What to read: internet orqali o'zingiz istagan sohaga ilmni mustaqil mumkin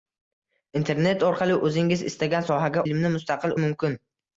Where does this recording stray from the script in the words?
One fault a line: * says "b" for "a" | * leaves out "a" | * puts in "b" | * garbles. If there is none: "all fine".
all fine